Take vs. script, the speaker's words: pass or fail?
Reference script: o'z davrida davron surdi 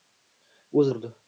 fail